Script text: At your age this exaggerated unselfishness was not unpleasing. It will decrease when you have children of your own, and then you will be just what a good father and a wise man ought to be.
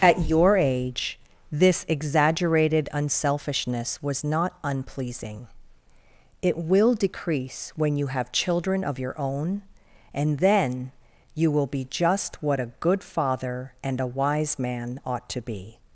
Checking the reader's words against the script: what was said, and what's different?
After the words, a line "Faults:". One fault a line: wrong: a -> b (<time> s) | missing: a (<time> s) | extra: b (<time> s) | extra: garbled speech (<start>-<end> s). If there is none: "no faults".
At your age this exaggerated unselfishness was not unpleasing. It will decrease when you have children of your own, and then you will be just what a good father and a wise man ought to be.
Faults:
no faults